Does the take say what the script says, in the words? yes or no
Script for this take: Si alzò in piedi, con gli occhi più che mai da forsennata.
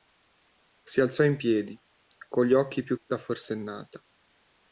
no